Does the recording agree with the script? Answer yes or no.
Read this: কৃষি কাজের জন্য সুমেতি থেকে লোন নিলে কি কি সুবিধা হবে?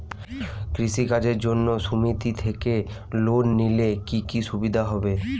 yes